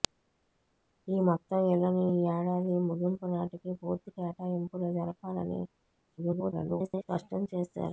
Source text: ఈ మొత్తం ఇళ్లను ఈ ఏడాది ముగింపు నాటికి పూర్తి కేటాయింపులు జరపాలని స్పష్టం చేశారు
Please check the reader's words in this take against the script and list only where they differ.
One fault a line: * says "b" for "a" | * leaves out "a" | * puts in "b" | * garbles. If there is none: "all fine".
* garbles